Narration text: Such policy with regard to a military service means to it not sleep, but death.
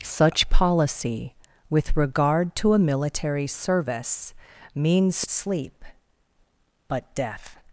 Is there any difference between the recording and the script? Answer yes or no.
yes